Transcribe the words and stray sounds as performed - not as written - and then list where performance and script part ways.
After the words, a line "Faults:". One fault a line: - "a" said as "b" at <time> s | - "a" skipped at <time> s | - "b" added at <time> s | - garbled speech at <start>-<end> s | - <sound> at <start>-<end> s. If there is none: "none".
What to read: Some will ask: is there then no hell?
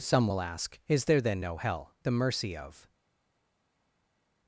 Some will ask: is there then no hell? The mercy of
Faults:
- "The mercy of" added at 2.0 s